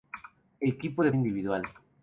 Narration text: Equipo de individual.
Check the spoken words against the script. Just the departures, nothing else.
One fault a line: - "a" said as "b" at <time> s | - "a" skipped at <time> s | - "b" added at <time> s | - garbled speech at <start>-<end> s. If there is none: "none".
none